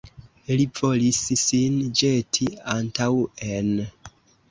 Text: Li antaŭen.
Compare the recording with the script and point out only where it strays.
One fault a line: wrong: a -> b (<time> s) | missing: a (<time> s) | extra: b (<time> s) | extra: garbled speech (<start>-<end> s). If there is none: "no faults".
extra: volis sin ĵeti (0.8 s)